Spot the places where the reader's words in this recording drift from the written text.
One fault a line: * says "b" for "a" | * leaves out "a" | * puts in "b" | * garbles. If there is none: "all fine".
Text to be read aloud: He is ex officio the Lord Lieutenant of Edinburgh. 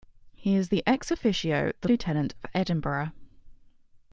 * leaves out "Lord"